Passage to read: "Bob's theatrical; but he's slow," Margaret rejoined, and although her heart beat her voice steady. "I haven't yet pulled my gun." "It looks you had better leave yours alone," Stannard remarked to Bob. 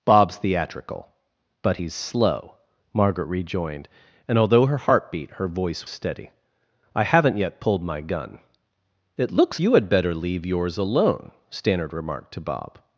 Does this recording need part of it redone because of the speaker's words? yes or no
no